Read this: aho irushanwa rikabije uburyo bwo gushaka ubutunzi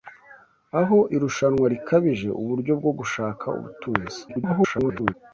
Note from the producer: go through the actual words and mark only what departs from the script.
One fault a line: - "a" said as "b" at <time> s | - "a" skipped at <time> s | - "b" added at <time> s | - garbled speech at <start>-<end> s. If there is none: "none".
- garbled speech at 4.3-5.1 s